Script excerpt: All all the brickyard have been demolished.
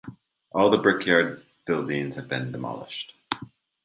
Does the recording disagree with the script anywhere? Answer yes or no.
yes